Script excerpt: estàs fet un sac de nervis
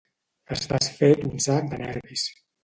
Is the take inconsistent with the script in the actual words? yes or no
no